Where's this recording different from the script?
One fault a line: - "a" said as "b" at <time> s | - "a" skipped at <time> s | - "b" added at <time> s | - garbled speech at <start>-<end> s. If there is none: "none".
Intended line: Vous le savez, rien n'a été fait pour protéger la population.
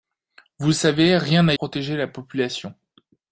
- "été fait pour" skipped at 1.5 s